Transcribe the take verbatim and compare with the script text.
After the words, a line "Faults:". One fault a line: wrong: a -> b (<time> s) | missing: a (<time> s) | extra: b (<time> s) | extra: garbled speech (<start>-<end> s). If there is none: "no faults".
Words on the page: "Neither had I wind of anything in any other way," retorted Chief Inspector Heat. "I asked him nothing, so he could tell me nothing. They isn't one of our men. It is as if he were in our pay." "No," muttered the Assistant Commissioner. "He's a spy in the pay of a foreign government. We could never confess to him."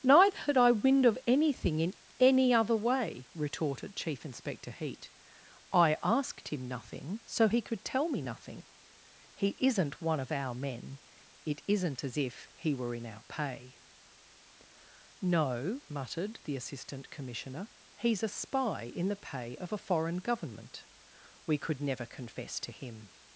"Neither had I wind of anything in any other way," retorted Chief Inspector Heat. "I asked him nothing, so he could tell me nothing. He isn't one of our men. It isn't as if he were in our pay." "No," muttered the Assistant Commissioner. "He's a spy in the pay of a foreign government. We could never confess to him."
Faults:
wrong: They -> He (9.3 s)
wrong: is -> isn't (11.7 s)